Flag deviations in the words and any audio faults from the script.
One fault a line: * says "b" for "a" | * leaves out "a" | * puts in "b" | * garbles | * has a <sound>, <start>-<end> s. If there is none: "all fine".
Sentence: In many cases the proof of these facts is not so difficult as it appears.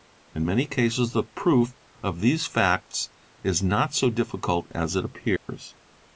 * has a dropout, 5.4-5.5 s